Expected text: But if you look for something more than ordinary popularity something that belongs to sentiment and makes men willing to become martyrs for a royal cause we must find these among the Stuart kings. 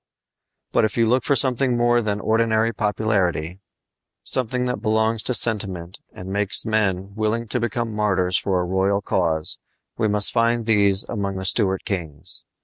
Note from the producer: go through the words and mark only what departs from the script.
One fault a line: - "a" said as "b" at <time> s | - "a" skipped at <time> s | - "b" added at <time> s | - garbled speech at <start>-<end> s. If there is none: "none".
none